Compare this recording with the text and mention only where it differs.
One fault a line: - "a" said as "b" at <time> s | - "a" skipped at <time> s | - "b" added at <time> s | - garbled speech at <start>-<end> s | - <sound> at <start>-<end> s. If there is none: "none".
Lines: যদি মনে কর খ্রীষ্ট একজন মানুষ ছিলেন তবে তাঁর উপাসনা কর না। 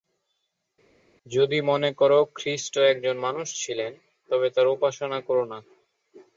none